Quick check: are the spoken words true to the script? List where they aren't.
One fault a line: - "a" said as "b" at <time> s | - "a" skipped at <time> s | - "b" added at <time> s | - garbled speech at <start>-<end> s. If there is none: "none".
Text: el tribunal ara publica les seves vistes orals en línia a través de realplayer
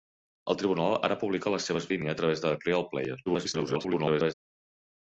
- "vistes orals en" skipped at 1.9 s
- garbled speech at 3.3-4.3 s